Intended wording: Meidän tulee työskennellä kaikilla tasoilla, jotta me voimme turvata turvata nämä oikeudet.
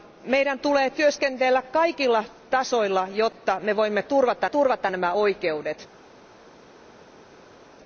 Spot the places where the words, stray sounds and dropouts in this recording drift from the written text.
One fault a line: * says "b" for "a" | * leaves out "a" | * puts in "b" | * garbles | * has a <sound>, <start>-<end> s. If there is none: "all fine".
all fine